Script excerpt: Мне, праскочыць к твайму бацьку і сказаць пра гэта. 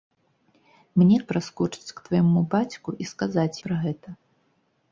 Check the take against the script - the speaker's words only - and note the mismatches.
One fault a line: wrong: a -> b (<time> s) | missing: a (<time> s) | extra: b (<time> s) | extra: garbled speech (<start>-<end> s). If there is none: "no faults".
no faults